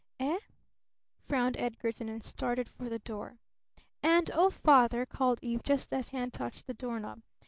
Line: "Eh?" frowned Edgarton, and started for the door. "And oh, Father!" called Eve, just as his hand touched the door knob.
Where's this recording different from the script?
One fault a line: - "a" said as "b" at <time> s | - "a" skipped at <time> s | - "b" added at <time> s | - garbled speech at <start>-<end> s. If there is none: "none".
- "his" skipped at 6.1 s